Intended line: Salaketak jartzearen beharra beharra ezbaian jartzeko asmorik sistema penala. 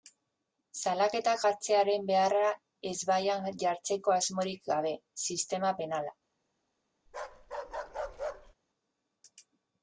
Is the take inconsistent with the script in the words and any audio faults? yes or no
yes